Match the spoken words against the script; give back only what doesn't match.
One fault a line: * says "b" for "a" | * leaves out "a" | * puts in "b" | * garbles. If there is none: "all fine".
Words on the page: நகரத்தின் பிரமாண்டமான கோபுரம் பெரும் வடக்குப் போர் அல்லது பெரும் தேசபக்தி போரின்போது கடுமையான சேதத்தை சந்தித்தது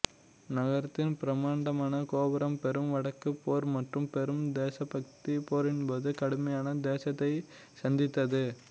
* says "மற்றும்" for "அல்லது"